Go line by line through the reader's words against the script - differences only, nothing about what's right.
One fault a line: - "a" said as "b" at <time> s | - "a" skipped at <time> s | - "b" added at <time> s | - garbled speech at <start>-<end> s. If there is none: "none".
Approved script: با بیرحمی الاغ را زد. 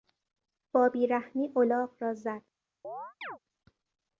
none